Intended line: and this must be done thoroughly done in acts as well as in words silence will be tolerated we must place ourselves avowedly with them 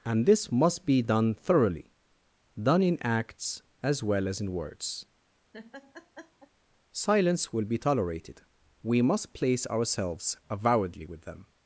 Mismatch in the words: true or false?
false